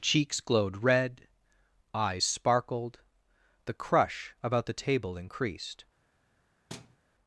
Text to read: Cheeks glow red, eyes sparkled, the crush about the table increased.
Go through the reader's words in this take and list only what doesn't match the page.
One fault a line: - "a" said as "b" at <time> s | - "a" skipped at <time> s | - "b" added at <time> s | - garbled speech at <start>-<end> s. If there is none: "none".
- "glow" said as "glowed" at 0.4 s